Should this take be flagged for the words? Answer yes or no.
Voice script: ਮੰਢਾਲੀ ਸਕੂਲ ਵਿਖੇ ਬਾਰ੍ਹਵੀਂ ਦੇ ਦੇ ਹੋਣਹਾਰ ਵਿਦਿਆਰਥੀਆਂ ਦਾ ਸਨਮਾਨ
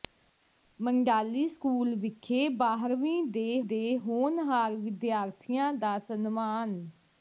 no